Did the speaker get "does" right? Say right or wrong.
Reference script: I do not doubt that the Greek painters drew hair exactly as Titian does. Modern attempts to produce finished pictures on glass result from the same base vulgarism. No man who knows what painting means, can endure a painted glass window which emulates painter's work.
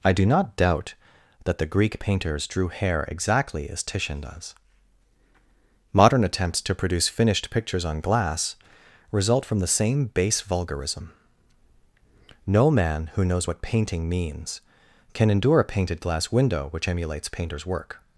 right